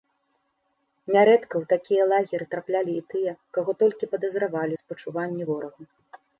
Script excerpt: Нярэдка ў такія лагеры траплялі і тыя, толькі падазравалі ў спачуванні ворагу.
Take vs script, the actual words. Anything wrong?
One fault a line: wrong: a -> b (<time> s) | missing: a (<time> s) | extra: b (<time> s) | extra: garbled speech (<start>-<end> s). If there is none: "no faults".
extra: каго (3.6 s)